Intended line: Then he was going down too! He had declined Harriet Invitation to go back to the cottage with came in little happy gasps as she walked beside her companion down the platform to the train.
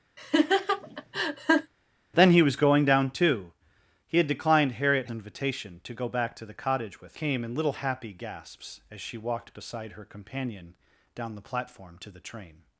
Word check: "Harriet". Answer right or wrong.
right